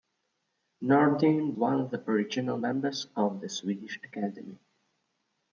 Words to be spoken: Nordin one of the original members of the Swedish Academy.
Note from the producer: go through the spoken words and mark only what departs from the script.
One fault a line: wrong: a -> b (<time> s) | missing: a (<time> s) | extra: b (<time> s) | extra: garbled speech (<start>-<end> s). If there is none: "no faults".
no faults